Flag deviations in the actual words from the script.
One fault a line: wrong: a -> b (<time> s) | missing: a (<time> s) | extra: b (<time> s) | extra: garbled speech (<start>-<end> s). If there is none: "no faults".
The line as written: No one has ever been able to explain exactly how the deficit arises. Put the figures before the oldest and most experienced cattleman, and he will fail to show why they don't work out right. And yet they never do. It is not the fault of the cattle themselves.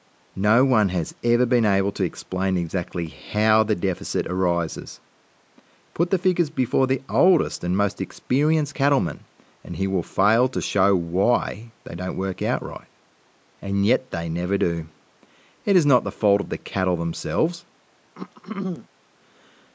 no faults